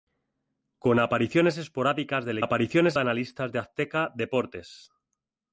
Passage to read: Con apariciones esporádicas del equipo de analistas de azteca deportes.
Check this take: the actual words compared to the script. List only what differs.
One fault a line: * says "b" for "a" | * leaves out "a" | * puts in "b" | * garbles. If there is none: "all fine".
* says "apariciones" for "equipo"